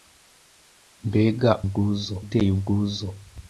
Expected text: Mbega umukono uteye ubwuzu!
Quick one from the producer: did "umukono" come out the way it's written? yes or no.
no